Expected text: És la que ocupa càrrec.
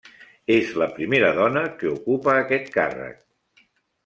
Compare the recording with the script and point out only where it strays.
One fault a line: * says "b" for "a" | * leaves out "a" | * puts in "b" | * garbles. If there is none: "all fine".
* puts in "primera dona"
* puts in "aquest"